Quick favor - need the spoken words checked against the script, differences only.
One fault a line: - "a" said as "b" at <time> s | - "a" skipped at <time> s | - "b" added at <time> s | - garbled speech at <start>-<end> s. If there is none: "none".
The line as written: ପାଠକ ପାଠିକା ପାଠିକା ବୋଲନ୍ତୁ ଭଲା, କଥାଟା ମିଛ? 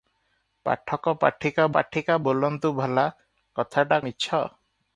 none